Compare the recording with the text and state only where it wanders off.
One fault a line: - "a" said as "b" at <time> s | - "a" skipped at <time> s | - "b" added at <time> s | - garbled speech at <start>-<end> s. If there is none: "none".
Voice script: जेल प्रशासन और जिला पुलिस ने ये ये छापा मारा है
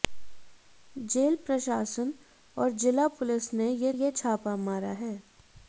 none